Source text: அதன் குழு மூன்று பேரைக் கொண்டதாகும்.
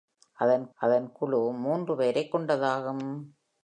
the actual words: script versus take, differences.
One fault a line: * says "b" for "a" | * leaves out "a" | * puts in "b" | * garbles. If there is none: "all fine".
* puts in "அதன்"